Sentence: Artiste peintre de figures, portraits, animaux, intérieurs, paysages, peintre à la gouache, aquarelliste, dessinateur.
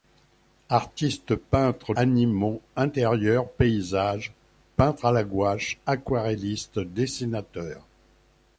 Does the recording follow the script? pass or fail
fail